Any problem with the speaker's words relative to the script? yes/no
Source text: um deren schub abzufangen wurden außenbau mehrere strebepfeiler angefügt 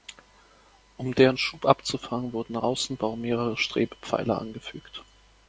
no